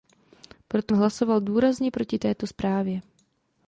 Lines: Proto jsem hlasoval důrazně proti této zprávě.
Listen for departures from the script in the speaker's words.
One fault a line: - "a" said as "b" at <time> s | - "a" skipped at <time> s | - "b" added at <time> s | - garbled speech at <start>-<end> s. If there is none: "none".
- "jsem" skipped at 0.9 s